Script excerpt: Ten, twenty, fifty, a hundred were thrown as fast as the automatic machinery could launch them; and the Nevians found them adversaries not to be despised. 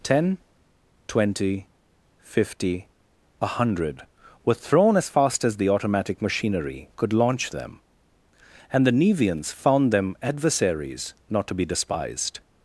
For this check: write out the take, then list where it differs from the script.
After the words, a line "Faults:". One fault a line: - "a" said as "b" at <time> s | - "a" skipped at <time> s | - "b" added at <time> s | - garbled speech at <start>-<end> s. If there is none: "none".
Ten, twenty, fifty, a hundred were thrown as fast as the automatic machinery could launch them; and the Nevians found them adversaries not to be despised.
Faults:
none